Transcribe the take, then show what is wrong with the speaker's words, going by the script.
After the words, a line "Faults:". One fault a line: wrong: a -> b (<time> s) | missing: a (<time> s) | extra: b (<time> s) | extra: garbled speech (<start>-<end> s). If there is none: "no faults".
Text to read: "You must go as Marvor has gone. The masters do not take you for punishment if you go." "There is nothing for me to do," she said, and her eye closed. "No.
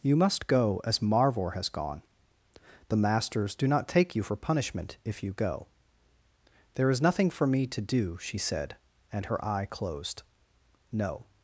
"You must go as Marvor has gone. The masters do not take you for punishment if you go." "There is nothing for me to do," she said, and her eye closed. "No.
Faults:
no faults